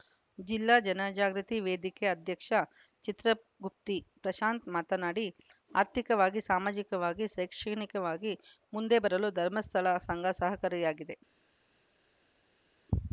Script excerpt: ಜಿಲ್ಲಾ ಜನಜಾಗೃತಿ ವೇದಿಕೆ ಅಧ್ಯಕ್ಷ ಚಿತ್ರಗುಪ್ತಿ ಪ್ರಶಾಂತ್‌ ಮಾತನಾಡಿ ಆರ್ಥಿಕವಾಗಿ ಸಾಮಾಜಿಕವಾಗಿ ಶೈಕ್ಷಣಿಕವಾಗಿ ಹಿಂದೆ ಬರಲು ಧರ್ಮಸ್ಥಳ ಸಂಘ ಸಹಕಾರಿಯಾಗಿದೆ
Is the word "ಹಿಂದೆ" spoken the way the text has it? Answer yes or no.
no